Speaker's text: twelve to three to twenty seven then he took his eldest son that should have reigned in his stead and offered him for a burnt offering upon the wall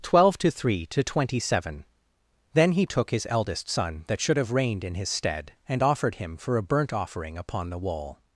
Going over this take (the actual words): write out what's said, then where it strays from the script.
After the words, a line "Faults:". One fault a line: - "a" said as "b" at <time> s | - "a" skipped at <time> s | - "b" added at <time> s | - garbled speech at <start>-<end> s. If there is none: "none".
twelve to three to twenty seven then he took his eldest son that should have reigned in his stead and offered him for a burnt offering upon the wall
Faults:
none